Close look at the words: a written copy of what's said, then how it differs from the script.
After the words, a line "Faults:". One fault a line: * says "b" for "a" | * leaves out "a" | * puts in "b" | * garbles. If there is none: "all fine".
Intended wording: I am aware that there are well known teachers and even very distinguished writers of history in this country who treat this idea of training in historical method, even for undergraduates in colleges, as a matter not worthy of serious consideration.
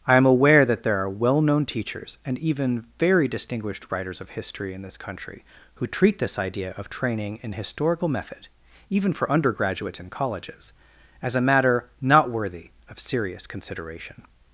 I am aware that there are well known teachers and even very distinguished writers of history in this country who treat this idea of training in historical method, even for undergraduates in colleges, as a matter not worthy of serious consideration.
Faults:
all fine